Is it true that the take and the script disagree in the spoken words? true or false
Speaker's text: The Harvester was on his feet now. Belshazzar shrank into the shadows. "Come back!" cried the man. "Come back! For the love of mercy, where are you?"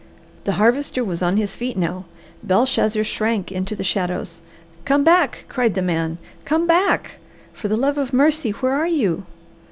false